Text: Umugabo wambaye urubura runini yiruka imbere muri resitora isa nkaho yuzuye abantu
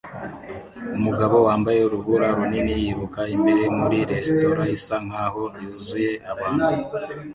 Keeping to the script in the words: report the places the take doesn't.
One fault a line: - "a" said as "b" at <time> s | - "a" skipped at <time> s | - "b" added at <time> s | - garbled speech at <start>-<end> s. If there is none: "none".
none